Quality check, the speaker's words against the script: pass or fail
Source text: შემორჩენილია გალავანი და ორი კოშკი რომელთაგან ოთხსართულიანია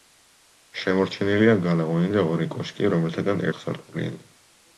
pass